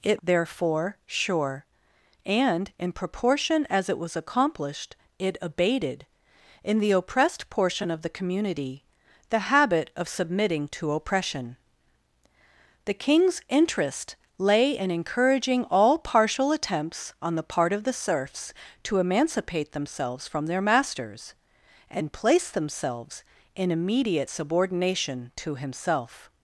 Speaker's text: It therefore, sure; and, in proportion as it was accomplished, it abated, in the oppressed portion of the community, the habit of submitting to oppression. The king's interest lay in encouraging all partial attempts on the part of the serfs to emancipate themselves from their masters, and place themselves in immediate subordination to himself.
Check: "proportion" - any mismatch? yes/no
no